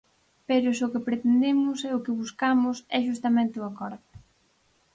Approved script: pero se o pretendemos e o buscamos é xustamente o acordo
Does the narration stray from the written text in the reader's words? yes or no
yes